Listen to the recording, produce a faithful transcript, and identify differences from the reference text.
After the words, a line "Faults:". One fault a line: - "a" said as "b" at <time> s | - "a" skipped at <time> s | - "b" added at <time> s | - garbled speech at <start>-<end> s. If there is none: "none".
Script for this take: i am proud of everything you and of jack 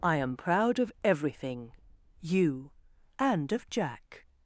i am proud of everything you and of jack
Faults:
none